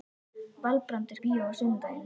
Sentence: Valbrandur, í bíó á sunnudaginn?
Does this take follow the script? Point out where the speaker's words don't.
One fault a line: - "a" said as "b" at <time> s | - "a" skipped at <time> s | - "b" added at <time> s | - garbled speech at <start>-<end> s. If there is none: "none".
none